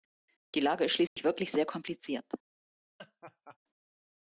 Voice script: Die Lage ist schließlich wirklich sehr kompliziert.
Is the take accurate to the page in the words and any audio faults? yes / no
no